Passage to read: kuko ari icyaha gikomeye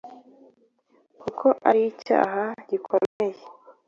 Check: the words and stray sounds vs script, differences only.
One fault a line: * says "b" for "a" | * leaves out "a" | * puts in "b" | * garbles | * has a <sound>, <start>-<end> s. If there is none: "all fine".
* has a dropout, 3.1-3.2 s